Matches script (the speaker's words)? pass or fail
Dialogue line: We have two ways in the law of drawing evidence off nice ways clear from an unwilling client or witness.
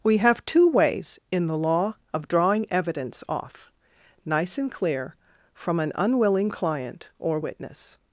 fail